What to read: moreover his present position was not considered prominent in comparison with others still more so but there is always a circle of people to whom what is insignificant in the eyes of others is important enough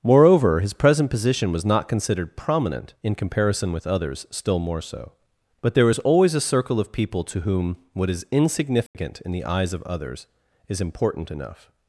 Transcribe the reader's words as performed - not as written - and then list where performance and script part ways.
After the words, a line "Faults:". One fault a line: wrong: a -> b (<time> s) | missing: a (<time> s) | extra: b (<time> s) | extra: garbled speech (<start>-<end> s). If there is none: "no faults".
moreover his present position was not considered prominent in comparison with others still more so but there is always a circle of people to whom what is insignificant in the eyes of others is important enough
Faults:
no faults